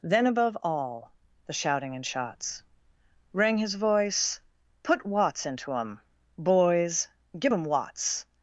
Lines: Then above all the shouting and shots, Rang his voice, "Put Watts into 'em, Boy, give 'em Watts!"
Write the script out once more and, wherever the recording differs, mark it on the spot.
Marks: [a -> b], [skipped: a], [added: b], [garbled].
Then above all the shouting and shots, Rang his voice, "Put Watts into 'em, [Boy, -> Boys] give 'em Watts!"